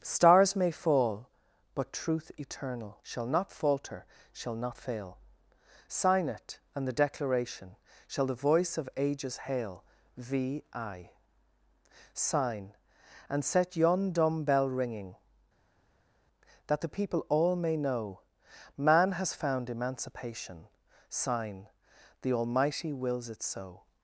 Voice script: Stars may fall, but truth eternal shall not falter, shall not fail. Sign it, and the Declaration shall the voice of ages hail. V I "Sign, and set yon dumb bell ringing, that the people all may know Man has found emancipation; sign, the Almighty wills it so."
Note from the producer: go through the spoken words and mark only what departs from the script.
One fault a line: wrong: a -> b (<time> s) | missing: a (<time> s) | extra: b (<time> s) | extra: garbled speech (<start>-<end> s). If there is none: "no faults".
no faults